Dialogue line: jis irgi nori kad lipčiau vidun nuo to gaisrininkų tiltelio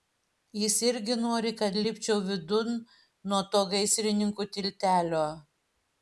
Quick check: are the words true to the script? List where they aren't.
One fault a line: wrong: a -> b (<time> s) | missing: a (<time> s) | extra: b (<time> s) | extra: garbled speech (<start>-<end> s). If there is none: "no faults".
no faults